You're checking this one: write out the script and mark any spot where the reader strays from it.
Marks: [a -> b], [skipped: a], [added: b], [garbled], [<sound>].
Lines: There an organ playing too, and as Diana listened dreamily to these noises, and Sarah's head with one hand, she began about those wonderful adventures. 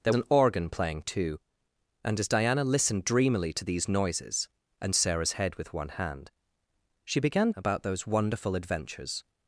There an organ playing too, and as Diana listened dreamily to these noises, and Sarah's head with one hand, she began about those wonderful adventures.